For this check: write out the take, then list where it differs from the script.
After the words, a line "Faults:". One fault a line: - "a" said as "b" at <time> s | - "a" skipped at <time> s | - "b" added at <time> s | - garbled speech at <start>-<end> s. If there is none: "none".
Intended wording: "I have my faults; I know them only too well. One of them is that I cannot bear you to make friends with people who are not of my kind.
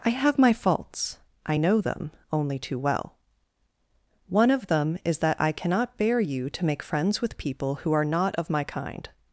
"I have my faults; I know them only too well. One of them is that I cannot bear you to make friends with people who are not of my kind.
Faults:
none